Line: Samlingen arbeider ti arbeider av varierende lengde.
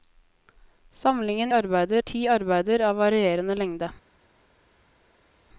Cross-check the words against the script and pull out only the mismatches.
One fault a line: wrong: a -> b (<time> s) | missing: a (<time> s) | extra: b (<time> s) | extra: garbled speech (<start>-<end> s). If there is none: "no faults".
no faults